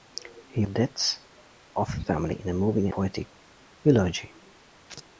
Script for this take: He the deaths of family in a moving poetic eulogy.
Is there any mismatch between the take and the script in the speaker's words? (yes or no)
no